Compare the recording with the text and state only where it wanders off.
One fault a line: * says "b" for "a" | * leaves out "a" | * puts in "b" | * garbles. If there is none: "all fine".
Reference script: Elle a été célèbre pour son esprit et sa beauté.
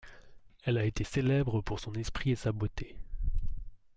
all fine